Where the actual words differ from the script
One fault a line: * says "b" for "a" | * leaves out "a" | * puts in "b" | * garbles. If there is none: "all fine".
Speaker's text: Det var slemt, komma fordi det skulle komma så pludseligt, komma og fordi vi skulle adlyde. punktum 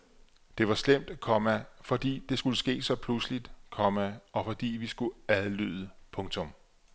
* says "ske" for "komma"